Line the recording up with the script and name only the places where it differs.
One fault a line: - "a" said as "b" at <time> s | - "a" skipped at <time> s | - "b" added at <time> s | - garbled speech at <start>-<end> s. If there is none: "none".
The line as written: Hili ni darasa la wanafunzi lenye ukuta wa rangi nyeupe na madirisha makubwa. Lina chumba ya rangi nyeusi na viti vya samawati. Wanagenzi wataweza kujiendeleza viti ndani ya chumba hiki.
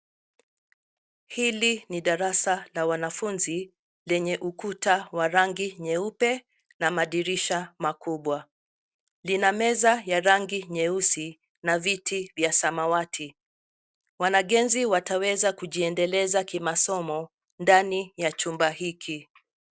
- "chumba" said as "meza" at 9.5 s
- "viti" said as "kimasomo" at 16.4 s